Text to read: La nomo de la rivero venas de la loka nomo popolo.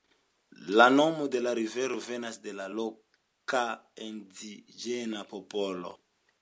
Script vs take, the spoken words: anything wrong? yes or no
yes